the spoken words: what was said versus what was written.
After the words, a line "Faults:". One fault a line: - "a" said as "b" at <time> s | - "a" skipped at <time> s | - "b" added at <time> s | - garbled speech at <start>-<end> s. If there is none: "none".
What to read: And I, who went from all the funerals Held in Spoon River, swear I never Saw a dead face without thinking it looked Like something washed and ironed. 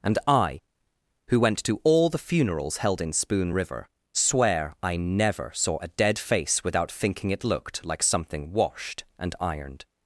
And I, who went to all the funerals Held in Spoon River, swear I never Saw a dead face without thinking it looked Like something washed and ironed.
Faults:
- "from" said as "to" at 1.6 s